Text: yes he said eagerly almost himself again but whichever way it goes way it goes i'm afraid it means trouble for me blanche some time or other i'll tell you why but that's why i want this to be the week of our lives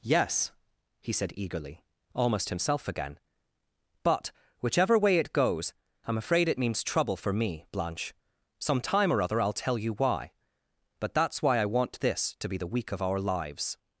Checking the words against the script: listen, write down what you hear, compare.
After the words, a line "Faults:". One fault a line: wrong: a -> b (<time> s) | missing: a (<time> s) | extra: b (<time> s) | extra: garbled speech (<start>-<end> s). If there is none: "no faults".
yes he said eagerly almost himself again but whichever way it goes i'm afraid it means trouble for me blanche some time or other i'll tell you why but that's why i want this to be the week of our lives
Faults:
missing: way it goes (5.8 s)